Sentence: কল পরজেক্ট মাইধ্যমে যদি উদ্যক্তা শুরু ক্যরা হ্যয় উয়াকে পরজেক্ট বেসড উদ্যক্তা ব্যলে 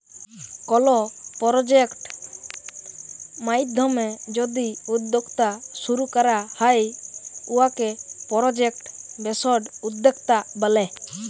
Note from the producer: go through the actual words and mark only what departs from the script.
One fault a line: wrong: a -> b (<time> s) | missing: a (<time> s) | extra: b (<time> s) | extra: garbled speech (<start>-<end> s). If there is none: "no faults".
no faults